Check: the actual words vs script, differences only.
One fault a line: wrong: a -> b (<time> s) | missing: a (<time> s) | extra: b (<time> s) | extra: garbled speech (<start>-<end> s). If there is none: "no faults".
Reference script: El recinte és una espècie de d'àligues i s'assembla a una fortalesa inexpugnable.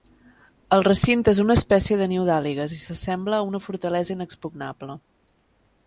extra: niu (2.1 s)